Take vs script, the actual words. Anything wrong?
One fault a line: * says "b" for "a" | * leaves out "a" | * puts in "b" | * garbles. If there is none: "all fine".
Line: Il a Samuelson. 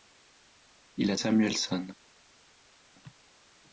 all fine